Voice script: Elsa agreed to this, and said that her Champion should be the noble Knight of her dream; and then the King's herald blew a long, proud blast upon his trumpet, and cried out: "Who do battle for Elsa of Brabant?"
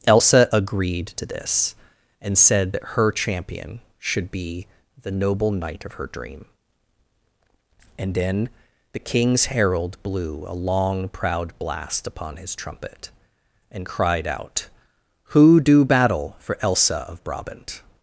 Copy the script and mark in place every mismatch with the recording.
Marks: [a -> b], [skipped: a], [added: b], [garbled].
Elsa agreed to this, and said that her Champion should be the noble Knight of her dream; and then the King's herald blew a long, proud blast upon his trumpet, and cried out: "Who do battle for Elsa of Brabant?"